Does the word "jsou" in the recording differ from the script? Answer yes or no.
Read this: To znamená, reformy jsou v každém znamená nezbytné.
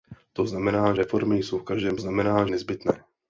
no